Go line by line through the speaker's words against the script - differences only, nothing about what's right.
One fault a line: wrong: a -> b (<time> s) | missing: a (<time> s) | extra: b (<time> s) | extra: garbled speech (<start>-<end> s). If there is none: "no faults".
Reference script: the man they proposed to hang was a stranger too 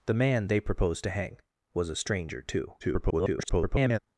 extra: garbled speech (2.8-4.0 s)